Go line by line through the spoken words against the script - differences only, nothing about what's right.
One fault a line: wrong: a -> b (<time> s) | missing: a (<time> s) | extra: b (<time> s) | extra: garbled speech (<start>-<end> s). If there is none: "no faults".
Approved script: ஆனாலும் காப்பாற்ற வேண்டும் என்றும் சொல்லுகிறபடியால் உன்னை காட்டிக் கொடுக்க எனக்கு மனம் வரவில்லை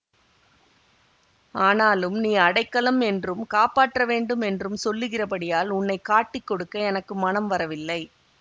extra: நீ அடைக்கலம் என்றும் (2.2 s)